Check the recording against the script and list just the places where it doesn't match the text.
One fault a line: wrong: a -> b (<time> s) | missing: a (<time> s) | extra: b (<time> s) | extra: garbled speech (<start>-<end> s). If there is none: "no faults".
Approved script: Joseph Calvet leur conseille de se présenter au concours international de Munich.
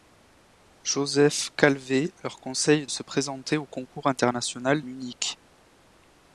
missing: de (2.9 s)
missing: de (4.8 s)